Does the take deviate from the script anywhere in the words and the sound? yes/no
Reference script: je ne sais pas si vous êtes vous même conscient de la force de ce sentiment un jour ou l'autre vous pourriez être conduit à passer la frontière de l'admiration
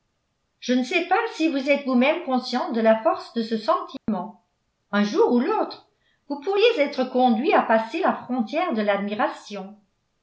yes